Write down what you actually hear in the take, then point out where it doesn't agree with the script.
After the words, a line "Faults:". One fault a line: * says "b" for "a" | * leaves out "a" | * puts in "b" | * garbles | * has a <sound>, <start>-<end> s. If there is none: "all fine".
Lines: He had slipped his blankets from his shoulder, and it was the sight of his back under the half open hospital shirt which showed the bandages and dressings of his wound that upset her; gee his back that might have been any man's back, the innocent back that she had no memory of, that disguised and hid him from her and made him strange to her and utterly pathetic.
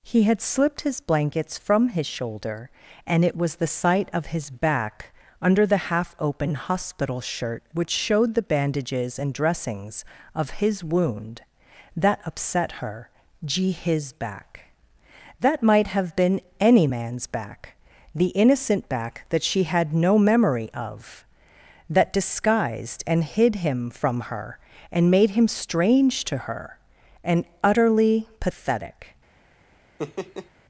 He had slipped his blankets from his shoulder, and it was the sight of his back under the half open hospital shirt which showed the bandages and dressings of his wound that upset her; gee his back that might have been any man's back, the innocent back that she had no memory of, that disguised and hid him from her and made him strange to her and utterly pathetic.
Faults:
* has a laugh, 30.0-30.5 s